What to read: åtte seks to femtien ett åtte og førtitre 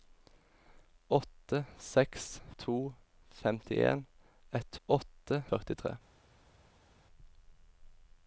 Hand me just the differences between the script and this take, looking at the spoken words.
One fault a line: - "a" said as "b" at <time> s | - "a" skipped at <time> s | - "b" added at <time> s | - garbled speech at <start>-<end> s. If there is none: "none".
none